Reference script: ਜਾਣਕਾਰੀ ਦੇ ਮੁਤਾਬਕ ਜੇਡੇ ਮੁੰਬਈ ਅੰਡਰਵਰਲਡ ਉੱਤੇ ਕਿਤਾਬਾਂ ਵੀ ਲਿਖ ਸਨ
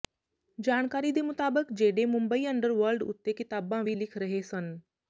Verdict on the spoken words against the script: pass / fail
fail